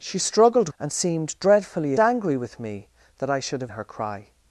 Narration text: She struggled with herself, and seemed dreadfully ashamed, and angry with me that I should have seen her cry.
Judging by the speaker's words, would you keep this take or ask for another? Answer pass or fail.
fail